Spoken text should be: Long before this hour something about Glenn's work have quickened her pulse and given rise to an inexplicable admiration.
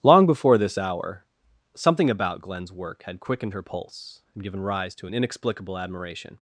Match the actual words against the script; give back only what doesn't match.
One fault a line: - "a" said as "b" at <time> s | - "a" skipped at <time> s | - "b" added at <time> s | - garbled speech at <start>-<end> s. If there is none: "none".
- "have" said as "had" at 3.0 s